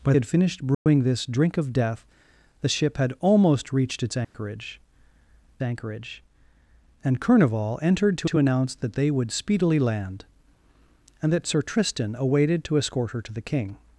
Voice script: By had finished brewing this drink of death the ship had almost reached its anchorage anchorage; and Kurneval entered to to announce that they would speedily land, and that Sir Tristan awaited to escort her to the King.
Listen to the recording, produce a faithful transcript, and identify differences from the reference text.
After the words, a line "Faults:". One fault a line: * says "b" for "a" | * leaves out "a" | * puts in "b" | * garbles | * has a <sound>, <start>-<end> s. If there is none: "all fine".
By had finished brewing this drink of death the ship had almost reached its anchorage anchorage; and Kurneval entered to to announce that they would speedily land, and that Sir Tristan awaited to escort her to the King.
Faults:
* has a dropout, 0.7-0.9 s
* has a dropout, 4.2-4.3 s